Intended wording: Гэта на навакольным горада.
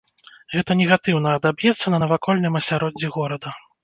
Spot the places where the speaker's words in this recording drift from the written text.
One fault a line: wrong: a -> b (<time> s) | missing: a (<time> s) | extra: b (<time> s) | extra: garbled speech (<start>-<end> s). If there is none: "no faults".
extra: негатыўна адаб'ецца (0.8 s)
extra: асяроддзі (2.6 s)